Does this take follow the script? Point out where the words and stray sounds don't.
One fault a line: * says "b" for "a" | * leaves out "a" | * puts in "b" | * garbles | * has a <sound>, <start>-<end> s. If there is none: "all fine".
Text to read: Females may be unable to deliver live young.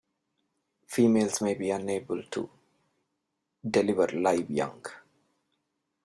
all fine